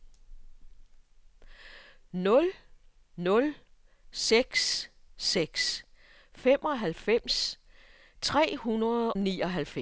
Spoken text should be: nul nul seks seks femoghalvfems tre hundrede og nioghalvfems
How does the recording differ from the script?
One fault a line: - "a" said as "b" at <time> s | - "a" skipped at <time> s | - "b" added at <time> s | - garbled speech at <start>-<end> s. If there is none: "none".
- "og" skipped at 9.1 s